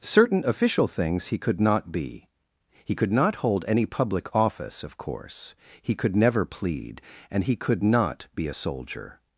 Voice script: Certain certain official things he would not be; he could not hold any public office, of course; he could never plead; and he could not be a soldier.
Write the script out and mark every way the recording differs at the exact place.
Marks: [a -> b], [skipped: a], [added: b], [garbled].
Certain [skipped: certain] official things he [would -> could] not be; he could not hold any public office, of course; he could never plead; and he could not be a soldier.